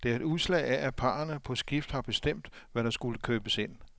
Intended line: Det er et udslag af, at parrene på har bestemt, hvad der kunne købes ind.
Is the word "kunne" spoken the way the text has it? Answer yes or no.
no